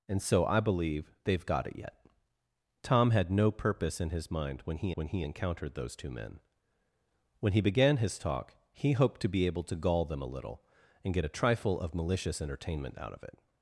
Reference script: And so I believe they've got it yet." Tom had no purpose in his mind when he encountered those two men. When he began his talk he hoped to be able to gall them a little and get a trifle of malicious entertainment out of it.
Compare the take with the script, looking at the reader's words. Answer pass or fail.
fail